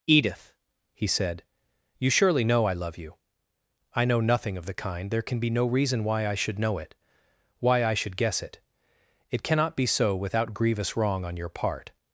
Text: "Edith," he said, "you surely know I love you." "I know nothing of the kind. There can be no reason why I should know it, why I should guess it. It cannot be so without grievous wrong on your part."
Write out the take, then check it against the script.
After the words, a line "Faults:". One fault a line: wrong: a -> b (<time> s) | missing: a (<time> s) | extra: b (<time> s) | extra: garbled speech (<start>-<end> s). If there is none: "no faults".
"Edith," he said, "you surely know I love you." "I know nothing of the kind. There can be no reason why I should know it, why I should guess it. It cannot be so without grievous wrong on your part."
Faults:
no faults